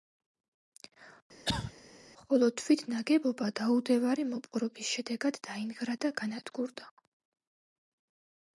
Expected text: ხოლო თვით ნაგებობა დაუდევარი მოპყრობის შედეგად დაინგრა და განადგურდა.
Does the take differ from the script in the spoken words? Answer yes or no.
no